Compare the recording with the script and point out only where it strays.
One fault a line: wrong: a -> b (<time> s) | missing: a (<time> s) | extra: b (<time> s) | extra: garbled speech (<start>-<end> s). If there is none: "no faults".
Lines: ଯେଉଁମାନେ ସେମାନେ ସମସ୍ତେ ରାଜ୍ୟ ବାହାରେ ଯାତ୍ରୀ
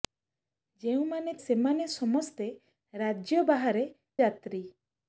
no faults